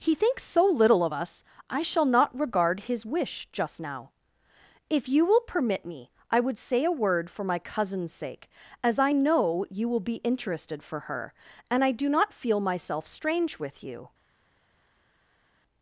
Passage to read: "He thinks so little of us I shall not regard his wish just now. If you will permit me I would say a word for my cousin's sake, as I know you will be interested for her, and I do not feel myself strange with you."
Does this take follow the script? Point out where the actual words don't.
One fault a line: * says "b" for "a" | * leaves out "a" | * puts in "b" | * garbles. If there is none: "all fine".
all fine